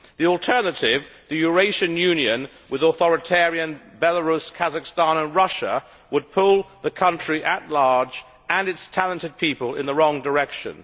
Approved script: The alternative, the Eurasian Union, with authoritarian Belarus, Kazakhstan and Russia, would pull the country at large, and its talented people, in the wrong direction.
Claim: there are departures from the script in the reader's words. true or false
false